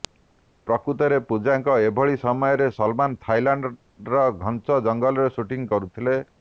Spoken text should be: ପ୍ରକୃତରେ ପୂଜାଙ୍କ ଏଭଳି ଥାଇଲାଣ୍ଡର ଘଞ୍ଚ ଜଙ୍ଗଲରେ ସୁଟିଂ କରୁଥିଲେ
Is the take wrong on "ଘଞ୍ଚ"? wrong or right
right